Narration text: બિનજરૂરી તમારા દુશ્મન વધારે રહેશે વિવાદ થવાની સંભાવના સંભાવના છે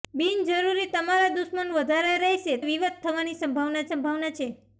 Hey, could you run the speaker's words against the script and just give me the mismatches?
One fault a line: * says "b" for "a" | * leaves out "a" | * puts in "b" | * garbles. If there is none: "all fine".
all fine